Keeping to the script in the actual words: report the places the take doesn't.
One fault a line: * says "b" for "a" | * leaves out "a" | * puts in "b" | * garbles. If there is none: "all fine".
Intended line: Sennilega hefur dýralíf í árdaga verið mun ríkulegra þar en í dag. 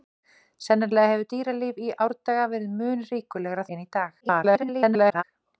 * leaves out "þar"
* garbles